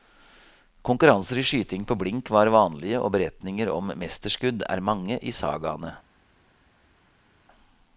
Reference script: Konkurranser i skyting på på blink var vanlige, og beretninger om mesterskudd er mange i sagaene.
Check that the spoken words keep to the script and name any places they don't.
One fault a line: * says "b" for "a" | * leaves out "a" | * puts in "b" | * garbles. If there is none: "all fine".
* leaves out "på"